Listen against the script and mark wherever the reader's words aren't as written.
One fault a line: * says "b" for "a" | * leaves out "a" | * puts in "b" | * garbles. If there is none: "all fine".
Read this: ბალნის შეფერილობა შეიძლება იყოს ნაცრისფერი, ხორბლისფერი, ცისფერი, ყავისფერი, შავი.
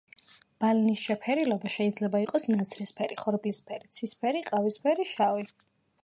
all fine